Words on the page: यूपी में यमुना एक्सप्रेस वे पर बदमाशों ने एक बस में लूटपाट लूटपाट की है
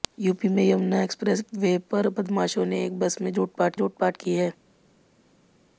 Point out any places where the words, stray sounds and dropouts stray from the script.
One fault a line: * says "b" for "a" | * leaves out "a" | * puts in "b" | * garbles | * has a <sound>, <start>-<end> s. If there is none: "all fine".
all fine